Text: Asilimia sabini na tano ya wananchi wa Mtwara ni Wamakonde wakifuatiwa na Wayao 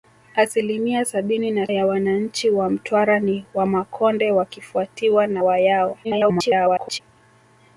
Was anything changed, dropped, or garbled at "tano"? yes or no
yes